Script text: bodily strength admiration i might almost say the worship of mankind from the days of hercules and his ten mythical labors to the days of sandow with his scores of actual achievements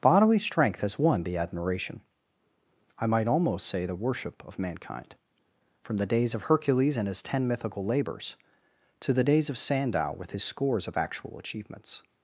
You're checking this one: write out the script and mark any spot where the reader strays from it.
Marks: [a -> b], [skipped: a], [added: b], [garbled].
bodily strength [added: has won the] admiration i might almost say the worship of mankind from the days of hercules and his ten mythical labors to the days of sandow with his scores of actual achievements